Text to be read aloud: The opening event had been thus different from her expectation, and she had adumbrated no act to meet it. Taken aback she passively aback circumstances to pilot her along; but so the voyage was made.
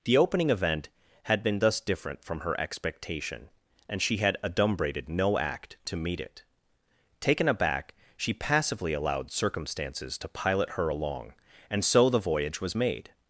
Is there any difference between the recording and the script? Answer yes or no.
yes